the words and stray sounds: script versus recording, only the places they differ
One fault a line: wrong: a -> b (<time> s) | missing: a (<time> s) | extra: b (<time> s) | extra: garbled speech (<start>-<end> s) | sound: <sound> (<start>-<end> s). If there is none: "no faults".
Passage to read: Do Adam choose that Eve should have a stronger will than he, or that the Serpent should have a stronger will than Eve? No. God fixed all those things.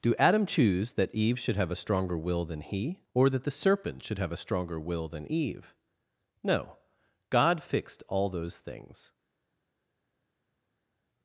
no faults